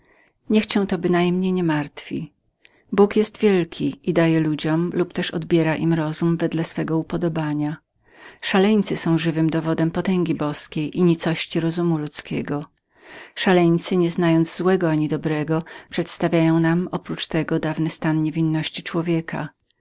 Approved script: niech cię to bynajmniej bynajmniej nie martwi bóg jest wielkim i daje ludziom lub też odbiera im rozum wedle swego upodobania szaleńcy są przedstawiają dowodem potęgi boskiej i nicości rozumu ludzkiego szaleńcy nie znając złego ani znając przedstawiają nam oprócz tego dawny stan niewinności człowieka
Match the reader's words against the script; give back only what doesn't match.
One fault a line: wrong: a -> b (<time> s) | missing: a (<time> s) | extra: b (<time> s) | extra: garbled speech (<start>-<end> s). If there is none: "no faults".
missing: bynajmniej (1.5 s)
wrong: przedstawiają -> żywym (9.2 s)
wrong: znając -> dobrego (15.1 s)